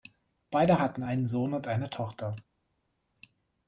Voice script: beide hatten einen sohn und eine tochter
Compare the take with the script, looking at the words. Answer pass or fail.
pass